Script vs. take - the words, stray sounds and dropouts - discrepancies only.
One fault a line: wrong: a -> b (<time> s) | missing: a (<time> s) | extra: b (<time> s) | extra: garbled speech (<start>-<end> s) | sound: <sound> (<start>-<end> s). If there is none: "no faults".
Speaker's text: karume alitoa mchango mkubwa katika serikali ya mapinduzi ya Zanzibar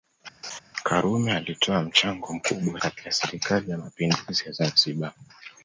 sound: laugh (0.4-0.6 s)